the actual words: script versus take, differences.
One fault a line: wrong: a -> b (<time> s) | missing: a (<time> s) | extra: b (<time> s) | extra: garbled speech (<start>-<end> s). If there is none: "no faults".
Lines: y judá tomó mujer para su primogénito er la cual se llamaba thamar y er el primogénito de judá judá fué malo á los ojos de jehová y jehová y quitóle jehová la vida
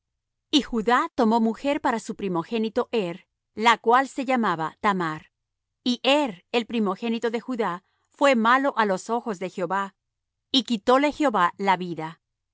missing: judá (7.8 s)
missing: jehová y (10.6 s)